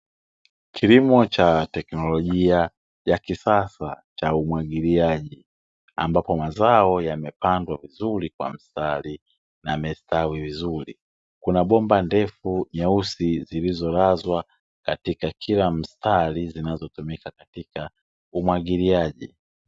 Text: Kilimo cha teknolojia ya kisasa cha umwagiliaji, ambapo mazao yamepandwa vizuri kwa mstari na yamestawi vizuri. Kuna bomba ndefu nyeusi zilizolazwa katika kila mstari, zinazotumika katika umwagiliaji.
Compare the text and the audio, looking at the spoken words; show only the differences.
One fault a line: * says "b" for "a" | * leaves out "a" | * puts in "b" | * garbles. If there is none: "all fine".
all fine